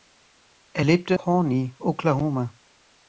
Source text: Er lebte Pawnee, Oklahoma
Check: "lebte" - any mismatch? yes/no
no